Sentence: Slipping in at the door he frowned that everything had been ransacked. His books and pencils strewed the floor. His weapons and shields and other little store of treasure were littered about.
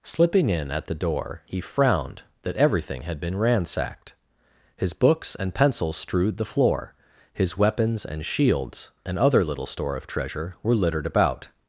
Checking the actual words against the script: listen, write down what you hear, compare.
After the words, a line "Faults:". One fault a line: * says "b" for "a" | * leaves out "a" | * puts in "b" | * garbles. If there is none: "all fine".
Slipping in at the door he frowned that everything had been ransacked. His books and pencils strewed the floor. His weapons and shields and other little store of treasure were littered about.
Faults:
all fine